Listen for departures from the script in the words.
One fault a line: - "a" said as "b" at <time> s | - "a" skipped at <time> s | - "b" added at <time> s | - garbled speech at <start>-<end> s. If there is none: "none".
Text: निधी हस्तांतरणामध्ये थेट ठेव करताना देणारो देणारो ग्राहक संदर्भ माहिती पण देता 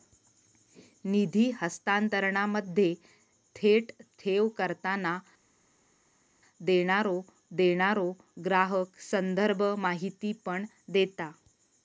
none